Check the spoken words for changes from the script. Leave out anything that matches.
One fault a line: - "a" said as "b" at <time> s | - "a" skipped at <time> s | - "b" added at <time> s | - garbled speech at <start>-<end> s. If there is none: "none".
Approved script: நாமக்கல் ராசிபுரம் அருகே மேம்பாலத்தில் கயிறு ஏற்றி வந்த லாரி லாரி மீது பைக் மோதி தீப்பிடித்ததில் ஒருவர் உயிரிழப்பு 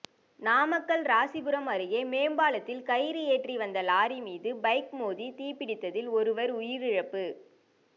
- "லாரி" skipped at 4.2 s